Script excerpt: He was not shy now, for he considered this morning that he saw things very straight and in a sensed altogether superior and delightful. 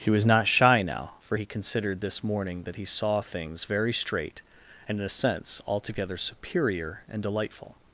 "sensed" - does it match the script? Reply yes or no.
no